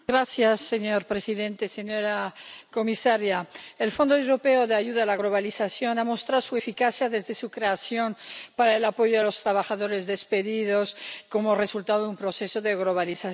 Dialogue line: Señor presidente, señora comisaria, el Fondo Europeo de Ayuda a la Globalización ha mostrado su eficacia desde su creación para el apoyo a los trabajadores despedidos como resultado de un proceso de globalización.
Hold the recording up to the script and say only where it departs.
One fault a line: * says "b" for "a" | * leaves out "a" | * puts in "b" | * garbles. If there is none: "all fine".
all fine